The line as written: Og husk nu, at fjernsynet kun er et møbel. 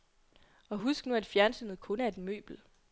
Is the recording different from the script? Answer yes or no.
no